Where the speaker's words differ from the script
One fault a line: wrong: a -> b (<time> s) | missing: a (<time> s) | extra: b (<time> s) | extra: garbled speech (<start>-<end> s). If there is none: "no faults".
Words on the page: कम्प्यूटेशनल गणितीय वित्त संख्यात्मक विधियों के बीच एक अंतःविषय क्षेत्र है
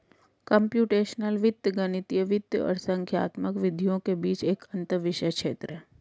extra: वित्त (1.4 s)
extra: और (2.6 s)